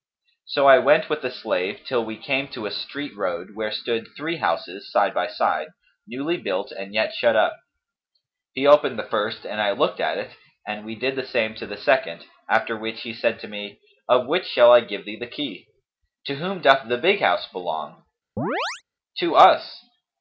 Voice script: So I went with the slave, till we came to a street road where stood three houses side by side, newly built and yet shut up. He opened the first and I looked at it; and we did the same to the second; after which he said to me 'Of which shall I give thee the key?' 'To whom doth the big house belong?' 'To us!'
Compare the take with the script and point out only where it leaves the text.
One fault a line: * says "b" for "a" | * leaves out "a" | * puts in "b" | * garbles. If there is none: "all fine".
all fine